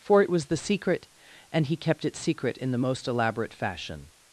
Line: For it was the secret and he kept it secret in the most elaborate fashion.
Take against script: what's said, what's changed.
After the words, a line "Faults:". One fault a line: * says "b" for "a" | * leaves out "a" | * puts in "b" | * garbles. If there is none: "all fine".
For it was the secret and he kept it secret in the most elaborate fashion.
Faults:
all fine